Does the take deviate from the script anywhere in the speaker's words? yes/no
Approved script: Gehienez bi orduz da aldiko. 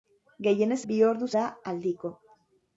no